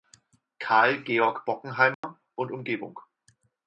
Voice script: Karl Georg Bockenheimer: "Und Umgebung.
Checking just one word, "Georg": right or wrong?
right